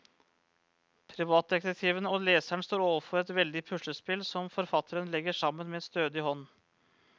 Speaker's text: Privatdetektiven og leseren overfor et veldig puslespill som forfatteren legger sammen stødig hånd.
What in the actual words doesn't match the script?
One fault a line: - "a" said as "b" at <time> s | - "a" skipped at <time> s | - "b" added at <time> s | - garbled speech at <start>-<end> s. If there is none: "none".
- "står" added at 2.7 s
- "med" added at 5.8 s